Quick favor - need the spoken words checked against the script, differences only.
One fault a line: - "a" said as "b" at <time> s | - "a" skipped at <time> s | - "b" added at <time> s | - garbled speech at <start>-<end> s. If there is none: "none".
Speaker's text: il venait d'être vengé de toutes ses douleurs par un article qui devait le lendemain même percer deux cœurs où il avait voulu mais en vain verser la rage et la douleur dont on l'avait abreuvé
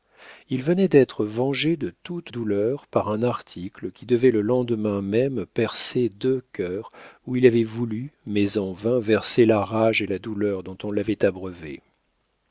- "ses" skipped at 2.3 s